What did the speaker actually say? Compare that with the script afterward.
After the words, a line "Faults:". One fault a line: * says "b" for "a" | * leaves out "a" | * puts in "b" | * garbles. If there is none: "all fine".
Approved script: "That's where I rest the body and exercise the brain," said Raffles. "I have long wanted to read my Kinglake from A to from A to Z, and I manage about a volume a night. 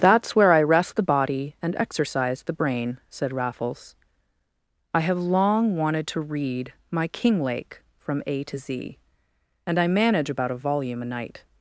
"That's where I rest the body and exercise the brain," said Raffles. "I have long wanted to read my Kinglake from A to Z, and I manage about a volume a night.
Faults:
* leaves out "from A to"